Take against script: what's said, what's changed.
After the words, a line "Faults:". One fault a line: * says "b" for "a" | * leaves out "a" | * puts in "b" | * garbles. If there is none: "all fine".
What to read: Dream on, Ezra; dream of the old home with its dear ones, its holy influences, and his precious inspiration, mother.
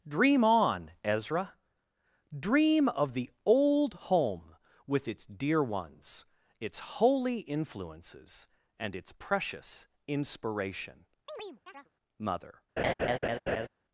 Dream on, Ezra; dream of the old home with its dear ones, its holy influences, and its precious inspiration, mother.
Faults:
* says "its" for "his"